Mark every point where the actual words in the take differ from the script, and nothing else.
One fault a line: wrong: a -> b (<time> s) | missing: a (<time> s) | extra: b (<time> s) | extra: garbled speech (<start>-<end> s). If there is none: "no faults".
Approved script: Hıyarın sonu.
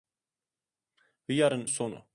no faults